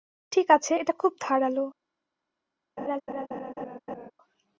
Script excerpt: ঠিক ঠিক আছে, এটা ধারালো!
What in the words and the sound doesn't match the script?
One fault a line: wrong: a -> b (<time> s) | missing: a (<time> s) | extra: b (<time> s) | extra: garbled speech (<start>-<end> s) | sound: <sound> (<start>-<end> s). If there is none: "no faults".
missing: ঠিক (0.5 s)
extra: খুব (0.9 s)
sound: laugh (2.8-4.1 s)